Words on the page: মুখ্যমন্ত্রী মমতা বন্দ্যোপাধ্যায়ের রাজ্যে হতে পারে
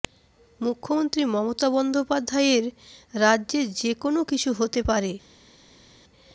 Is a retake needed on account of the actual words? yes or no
yes